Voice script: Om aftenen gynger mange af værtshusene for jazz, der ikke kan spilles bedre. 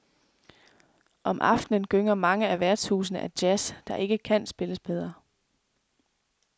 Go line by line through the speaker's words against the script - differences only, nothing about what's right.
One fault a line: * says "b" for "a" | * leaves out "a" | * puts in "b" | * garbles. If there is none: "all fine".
* says "af" for "for"